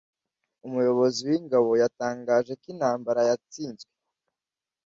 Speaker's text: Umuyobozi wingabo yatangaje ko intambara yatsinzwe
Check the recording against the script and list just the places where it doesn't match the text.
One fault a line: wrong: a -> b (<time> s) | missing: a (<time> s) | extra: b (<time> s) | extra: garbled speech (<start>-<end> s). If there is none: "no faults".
no faults